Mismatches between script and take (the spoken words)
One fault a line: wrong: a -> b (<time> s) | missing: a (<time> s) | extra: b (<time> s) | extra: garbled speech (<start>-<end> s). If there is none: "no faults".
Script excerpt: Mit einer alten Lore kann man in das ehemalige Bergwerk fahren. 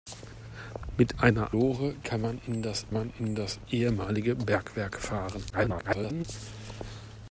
missing: alten (1.6 s)
extra: man in das (2.9 s)
extra: garbled speech (5.5-6.2 s)